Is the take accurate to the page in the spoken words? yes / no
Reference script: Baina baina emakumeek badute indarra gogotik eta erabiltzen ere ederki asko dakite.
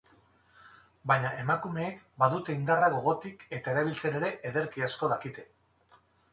no